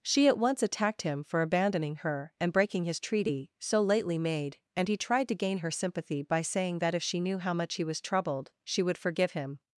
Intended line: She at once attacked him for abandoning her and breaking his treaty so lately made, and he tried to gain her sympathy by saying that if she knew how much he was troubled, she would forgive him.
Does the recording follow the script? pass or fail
pass